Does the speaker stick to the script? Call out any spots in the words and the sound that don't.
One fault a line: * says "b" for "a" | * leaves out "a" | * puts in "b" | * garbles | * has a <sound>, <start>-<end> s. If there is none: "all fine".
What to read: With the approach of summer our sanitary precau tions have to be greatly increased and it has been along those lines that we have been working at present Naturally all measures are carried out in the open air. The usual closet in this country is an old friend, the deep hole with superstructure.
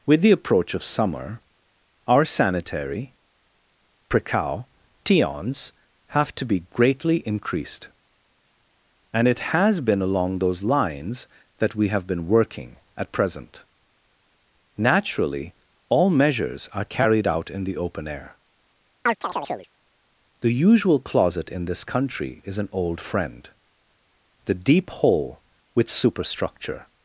* has a chirp, 19.1-19.7 s